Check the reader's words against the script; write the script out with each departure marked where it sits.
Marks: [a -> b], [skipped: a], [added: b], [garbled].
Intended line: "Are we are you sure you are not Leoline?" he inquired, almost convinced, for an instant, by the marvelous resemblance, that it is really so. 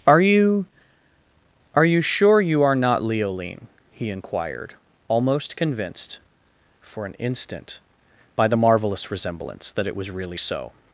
"Are [we -> you] are you sure you are not Leoline?" he inquired, almost convinced, for an instant, by the marvelous resemblance, that it [is -> was] really so.